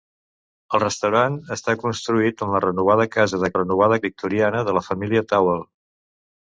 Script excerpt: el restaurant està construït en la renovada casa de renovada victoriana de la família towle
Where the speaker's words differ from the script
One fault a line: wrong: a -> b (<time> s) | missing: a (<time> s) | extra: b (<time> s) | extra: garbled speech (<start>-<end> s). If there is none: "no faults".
no faults